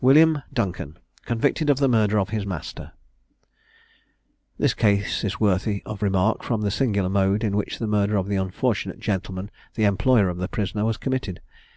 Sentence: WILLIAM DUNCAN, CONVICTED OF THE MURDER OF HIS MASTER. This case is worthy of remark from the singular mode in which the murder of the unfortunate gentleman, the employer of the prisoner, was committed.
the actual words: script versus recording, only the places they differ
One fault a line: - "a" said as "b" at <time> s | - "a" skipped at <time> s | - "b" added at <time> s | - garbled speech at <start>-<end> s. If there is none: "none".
none